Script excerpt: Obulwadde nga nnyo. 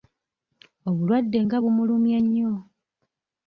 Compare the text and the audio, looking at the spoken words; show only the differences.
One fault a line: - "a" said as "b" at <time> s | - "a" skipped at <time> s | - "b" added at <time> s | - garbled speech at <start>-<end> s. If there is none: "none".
- "bumulumye" added at 1.6 s